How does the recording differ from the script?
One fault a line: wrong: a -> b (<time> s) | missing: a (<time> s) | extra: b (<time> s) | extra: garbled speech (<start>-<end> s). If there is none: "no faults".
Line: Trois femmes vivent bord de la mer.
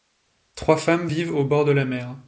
extra: au (1.3 s)